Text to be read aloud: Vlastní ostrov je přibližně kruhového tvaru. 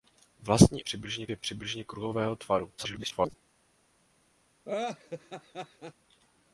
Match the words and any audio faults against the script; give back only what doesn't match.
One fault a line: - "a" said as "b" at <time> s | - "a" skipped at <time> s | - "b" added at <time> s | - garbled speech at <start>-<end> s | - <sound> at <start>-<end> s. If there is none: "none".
- "ostrov" said as "přibližně" at 0.8 s
- garbled speech at 2.8-3.3 s
- laugh at 4.7-5.9 s